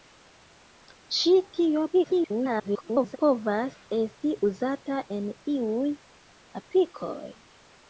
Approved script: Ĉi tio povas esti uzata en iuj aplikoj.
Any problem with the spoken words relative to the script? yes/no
yes